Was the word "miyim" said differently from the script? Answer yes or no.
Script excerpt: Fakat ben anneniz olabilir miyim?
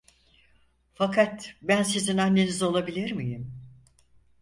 no